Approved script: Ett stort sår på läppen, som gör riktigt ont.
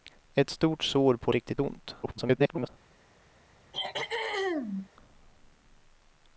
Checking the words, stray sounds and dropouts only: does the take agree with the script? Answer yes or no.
no